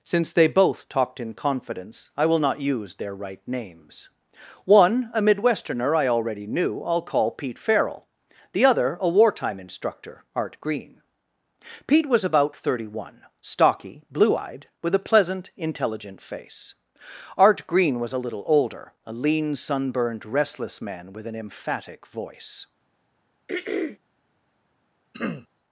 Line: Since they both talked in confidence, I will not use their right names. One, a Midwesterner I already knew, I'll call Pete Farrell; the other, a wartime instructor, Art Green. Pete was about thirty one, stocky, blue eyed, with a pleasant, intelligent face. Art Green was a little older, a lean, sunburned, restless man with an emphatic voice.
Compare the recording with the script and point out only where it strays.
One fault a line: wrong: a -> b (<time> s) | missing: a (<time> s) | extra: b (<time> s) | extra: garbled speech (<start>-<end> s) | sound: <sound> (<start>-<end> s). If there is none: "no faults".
sound: throat clearing (23.5-24.0 s)
sound: throat clearing (25.1-25.5 s)